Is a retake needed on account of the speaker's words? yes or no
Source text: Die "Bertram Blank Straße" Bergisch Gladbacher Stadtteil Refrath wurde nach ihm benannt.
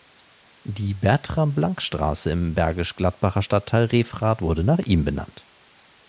yes